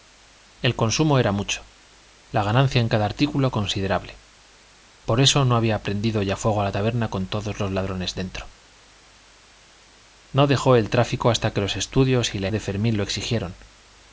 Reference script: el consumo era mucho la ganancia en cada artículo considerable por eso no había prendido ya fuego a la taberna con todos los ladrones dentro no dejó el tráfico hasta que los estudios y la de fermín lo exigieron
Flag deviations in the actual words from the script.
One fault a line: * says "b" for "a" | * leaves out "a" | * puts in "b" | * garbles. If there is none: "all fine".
all fine